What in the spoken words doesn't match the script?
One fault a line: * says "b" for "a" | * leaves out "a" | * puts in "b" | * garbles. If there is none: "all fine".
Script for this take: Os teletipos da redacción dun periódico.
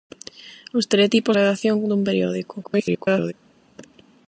* leaves out "da"
* garbles